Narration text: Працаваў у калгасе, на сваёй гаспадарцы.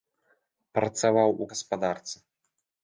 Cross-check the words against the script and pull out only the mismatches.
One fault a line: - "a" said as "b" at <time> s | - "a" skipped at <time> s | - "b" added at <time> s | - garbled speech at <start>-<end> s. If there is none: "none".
- "калгасе на сваёй" skipped at 1.5 s